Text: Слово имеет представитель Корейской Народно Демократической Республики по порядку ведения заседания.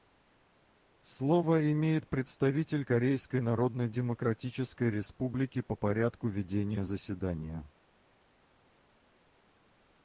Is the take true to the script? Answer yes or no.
yes